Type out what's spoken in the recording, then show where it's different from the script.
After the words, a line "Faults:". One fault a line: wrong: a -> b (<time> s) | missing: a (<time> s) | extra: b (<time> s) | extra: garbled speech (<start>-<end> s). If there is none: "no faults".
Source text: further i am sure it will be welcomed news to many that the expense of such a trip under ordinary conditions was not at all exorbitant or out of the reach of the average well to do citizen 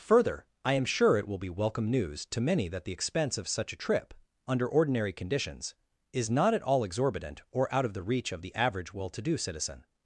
further i am sure it will be welcome news to many that the expense of such a trip under ordinary conditions is not at all exorbitant or out of the reach of the average well to do citizen
Faults:
wrong: welcomed -> welcome (1.5 s)
wrong: was -> is (6.1 s)